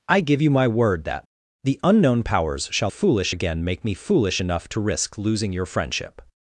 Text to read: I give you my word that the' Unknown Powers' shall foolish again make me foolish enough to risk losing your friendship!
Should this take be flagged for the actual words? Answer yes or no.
no